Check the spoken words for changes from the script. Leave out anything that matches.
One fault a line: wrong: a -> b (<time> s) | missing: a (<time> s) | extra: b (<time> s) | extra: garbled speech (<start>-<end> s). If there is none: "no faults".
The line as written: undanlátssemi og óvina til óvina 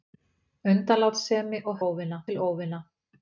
no faults